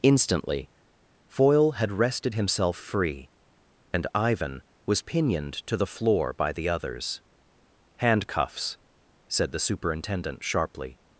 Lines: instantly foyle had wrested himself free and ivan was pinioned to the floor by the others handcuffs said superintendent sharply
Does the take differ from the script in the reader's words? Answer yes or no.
yes